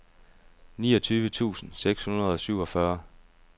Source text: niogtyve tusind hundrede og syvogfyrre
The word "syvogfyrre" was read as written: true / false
true